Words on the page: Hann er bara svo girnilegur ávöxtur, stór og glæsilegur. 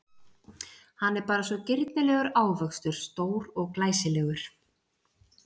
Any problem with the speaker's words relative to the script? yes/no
no